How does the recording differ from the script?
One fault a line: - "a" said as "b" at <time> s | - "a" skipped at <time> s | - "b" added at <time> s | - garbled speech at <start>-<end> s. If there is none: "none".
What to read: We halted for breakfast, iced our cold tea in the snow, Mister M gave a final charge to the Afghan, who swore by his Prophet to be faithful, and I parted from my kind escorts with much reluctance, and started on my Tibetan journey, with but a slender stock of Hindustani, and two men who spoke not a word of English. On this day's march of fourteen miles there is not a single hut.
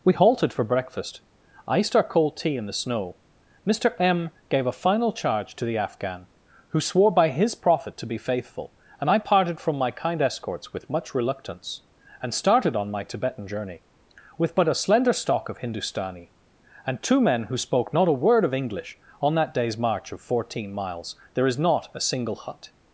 - "this" said as "that" at 19.4 s